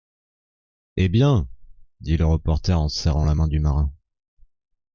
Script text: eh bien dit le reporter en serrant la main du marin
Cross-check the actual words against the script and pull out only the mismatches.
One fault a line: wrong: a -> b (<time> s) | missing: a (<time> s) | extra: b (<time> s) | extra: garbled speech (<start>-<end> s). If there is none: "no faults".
no faults